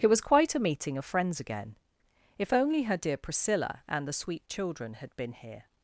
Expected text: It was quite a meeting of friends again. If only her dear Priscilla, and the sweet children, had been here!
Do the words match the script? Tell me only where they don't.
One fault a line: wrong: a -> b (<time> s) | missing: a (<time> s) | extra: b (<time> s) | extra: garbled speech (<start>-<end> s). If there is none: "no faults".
no faults